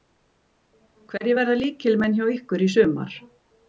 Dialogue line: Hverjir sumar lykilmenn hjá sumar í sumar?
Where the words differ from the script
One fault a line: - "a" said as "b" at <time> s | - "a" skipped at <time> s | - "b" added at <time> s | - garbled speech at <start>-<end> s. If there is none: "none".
- "sumar" said as "verða" at 1.4 s
- "sumar" said as "ykkur" at 2.3 s